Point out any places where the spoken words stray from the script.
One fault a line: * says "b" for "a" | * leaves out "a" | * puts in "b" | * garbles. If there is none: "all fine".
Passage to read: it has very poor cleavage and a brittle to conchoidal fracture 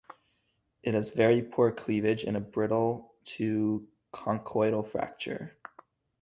all fine